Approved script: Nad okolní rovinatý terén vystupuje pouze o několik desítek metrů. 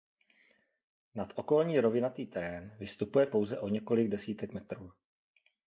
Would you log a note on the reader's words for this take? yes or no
no